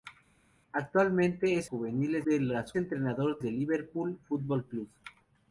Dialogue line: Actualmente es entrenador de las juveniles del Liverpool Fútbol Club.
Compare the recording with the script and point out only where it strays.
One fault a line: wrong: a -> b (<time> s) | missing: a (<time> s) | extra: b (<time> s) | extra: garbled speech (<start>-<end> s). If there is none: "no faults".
wrong: entrenador -> juveniles (1.6 s)
wrong: juveniles -> entrenador (2.8 s)